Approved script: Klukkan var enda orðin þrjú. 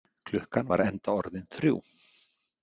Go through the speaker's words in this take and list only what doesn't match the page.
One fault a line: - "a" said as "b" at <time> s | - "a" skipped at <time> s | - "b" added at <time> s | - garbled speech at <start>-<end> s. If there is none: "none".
none